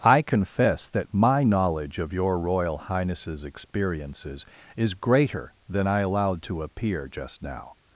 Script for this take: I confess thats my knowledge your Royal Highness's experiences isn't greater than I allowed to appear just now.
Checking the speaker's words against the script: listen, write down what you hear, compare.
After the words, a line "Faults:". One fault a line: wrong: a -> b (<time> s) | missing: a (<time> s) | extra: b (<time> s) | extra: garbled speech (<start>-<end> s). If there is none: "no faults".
I confess that my knowledge of your Royal Highness's experiences is greater than I allowed to appear just now.
Faults:
wrong: thats -> that (0.9 s)
extra: of (2.0 s)
wrong: isn't -> is (4.8 s)